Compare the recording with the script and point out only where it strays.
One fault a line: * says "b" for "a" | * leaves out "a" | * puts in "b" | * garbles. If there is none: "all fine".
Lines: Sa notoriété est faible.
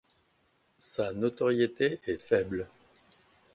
all fine